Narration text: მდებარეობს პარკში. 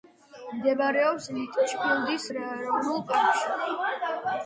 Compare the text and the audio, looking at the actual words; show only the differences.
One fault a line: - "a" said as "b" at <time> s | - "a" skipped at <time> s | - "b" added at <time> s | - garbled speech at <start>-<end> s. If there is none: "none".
- "ლიტჩფილდის ეროვნულ" added at 1.4 s